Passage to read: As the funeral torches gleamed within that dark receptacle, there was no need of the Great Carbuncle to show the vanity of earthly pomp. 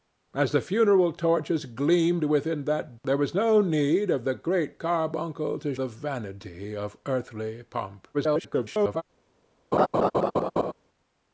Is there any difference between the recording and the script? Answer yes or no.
yes